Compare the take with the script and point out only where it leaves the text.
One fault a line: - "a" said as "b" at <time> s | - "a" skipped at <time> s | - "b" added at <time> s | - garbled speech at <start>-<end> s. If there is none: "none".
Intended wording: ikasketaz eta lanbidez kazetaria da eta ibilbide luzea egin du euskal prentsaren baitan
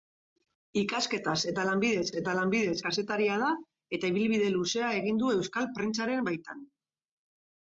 - "eta lanbidez" added at 2.2 s